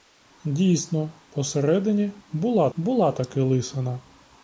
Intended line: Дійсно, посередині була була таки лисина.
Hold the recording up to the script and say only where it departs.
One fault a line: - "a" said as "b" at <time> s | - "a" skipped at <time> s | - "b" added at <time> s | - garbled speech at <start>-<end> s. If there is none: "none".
none